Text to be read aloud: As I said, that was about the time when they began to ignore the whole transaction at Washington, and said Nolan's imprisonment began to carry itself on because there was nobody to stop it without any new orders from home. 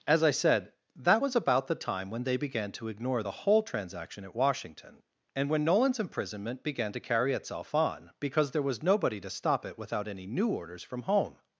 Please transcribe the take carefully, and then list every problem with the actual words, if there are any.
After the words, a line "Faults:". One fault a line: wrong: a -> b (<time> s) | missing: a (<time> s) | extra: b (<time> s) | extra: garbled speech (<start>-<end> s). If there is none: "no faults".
As I said, that was about the time when they began to ignore the whole transaction at Washington, and when Nolan's imprisonment began to carry itself on because there was nobody to stop it without any new orders from home.
Faults:
wrong: said -> when (5.5 s)